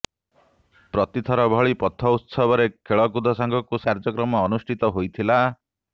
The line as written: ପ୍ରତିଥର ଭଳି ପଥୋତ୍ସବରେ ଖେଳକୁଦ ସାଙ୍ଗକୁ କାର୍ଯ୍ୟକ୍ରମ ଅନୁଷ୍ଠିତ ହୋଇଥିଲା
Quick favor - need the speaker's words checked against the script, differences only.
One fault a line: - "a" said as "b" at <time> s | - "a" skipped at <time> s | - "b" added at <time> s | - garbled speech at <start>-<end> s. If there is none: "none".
none